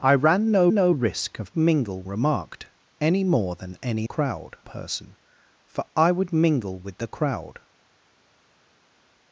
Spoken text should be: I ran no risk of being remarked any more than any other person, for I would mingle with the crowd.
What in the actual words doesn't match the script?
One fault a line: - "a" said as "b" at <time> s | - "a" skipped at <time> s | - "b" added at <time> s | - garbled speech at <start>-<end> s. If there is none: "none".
- "no" added at 0.7 s
- "being" said as "mingle" at 1.5 s
- "other" said as "crowd" at 4.0 s